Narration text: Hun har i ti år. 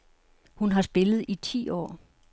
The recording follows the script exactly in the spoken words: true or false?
false